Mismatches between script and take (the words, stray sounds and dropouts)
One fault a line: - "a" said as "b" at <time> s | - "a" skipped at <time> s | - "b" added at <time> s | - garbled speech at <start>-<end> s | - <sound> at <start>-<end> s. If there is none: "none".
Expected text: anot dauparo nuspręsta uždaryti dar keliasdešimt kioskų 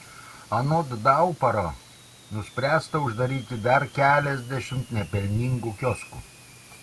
- "nepelningų" added at 5.0 s